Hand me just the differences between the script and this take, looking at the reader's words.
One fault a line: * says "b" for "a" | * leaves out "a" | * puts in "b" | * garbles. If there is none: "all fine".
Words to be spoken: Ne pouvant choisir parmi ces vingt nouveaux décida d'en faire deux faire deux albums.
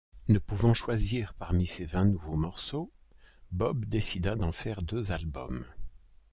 * puts in "morceaux Bob"
* leaves out "faire deux"